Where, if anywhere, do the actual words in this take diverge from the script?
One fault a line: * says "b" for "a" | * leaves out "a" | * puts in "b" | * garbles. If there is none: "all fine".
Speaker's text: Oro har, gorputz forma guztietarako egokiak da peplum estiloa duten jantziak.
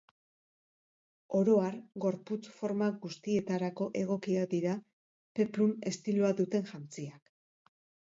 * says "dira" for "da"